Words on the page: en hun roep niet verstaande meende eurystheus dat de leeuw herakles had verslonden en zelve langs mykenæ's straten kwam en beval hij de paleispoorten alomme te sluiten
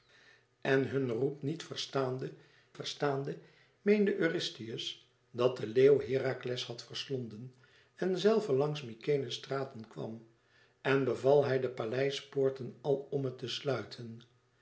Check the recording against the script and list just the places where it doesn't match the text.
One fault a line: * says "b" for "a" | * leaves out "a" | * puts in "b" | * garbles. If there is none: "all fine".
* puts in "verstaande"